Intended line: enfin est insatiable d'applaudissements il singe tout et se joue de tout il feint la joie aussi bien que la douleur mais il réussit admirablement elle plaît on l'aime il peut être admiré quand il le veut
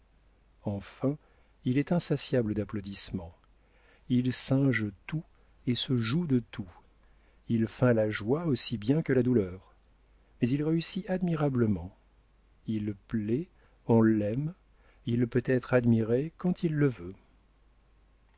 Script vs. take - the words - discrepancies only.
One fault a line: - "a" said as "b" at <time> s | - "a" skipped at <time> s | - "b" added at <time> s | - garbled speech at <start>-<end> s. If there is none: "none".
- "il" added at 1.6 s
- "elle" said as "il" at 12.6 s